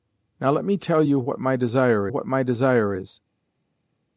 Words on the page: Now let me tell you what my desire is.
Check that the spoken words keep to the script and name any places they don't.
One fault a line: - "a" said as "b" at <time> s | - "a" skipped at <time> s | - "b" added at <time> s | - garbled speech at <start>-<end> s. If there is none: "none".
- "what my desire" added at 2.1 s